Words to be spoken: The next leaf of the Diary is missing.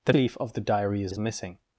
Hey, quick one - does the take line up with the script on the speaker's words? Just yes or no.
no